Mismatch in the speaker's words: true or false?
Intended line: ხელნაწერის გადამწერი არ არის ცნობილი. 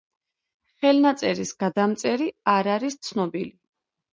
false